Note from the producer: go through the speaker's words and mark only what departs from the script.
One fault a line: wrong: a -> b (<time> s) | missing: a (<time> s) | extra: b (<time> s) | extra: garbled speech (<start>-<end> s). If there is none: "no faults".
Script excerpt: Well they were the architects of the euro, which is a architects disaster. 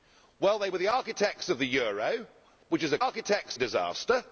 no faults